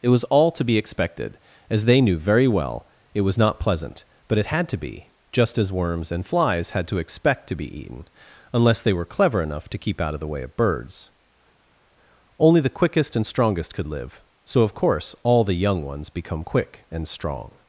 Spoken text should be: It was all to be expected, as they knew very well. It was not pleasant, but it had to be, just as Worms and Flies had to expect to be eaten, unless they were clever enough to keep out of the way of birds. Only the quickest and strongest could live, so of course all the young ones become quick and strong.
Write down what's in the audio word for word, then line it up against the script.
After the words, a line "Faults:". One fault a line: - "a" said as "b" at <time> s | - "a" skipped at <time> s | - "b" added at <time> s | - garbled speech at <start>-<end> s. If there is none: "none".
It was all to be expected, as they knew very well. It was not pleasant, but it had to be, just as Worms and Flies had to expect to be eaten, unless they were clever enough to keep out of the way of birds. Only the quickest and strongest could live, so of course all the young ones become quick and strong.
Faults:
none